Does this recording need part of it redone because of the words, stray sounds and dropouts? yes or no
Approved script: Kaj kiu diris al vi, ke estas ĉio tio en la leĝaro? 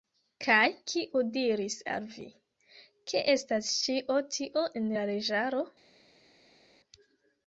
no